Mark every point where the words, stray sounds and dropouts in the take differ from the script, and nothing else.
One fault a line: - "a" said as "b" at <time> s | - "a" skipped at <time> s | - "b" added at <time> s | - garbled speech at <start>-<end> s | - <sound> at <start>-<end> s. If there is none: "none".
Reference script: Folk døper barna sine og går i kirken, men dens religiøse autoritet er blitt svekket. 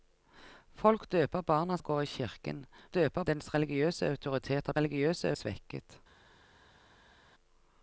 - "sine" skipped at 1.8 s
- "men" said as "døper" at 2.9 s
- "blitt" said as "religiøse" at 4.8 s